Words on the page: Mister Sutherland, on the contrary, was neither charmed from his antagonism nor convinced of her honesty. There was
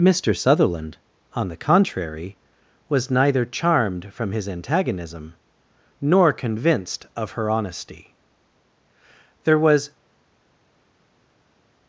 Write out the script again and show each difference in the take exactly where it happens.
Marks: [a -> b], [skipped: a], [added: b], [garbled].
Mister Sutherland, on the contrary, was neither charmed from his antagonism nor convinced of her honesty. There was